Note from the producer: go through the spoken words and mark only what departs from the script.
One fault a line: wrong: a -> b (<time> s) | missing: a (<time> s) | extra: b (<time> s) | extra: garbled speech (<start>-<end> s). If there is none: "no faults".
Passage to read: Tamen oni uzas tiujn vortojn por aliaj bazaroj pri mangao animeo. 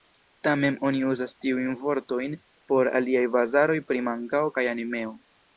extra: kaj (4.6 s)